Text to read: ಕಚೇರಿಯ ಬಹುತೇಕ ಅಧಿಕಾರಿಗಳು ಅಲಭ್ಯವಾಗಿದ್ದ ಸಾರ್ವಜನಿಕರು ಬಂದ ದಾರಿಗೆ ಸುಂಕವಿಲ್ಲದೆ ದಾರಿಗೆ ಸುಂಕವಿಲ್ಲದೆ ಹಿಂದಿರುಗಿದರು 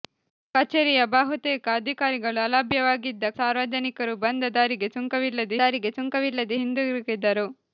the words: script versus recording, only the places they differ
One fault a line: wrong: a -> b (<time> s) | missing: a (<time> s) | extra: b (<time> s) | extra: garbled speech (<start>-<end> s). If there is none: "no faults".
no faults